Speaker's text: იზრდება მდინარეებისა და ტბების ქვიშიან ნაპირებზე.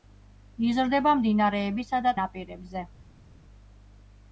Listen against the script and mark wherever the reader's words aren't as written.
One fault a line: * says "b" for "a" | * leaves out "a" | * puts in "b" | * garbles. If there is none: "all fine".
* leaves out "ტბების ქვიშიან"